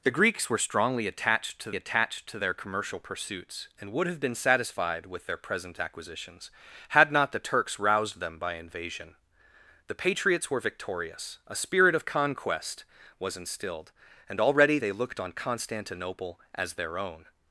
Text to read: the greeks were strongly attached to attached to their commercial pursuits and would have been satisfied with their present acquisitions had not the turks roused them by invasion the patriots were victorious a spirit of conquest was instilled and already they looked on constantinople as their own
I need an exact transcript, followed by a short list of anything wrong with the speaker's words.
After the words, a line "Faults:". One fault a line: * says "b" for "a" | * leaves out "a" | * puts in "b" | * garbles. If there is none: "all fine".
the greeks were strongly attached to attached to their commercial pursuits and would have been satisfied with their present acquisitions had not the turks roused them by invasion the patriots were victorious a spirit of conquest was instilled and already they looked on constantinople as their own
Faults:
all fine